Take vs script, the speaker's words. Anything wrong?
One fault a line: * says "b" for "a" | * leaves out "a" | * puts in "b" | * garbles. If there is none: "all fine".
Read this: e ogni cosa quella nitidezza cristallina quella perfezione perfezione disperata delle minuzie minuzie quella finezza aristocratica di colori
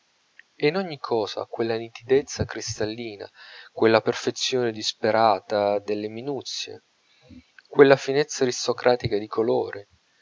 * puts in "in"
* leaves out "perfezione"
* leaves out "minuzie"